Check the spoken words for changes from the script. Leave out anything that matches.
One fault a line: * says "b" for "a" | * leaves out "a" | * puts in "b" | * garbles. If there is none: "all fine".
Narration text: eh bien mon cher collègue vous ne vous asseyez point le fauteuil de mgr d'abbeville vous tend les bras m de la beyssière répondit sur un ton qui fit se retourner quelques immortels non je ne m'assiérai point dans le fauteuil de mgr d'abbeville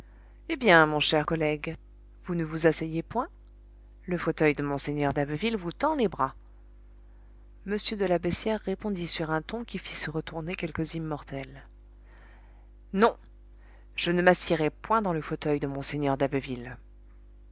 all fine